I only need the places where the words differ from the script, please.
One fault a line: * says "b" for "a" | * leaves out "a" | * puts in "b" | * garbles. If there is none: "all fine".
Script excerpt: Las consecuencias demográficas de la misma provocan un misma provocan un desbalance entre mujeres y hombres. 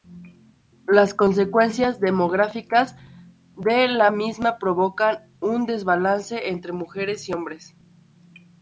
* leaves out "misma provocan un"